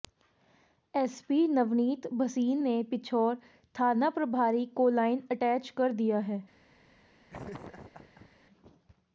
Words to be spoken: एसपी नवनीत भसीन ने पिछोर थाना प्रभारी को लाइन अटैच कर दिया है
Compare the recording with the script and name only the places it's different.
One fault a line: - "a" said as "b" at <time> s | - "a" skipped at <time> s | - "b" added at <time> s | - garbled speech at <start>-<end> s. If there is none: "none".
none